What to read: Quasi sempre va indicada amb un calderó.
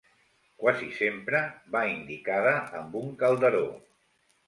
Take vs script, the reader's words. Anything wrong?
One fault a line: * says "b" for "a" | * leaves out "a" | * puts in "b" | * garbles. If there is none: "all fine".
all fine